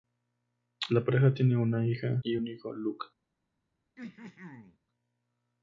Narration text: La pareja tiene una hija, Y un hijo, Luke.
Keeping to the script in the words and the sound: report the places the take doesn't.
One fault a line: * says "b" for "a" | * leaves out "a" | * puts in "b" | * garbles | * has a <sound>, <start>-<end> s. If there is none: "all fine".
* has a throat clearing, 4.0-4.8 s